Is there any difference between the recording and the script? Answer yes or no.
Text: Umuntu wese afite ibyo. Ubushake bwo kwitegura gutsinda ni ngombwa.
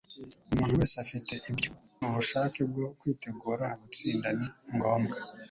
no